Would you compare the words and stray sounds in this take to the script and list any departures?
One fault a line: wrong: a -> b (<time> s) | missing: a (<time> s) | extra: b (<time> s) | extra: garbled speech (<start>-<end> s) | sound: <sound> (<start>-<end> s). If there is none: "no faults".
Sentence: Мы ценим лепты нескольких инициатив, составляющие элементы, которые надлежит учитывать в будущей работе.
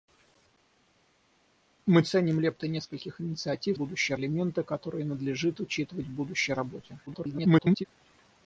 wrong: составляющие -> будущей (3.7 s)
extra: garbled speech (7.1-7.8 s)